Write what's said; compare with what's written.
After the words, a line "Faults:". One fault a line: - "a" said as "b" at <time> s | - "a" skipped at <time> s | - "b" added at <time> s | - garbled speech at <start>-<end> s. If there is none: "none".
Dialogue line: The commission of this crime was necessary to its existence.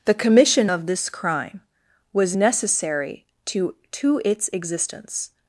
The commission of this crime was necessary to to its existence.
Faults:
- "to" added at 3.9 s